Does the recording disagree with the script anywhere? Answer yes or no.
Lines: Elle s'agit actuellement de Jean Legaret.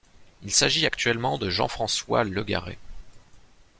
yes